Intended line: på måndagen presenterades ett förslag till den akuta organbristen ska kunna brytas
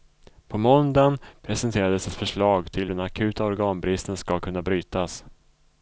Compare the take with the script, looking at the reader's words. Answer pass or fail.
pass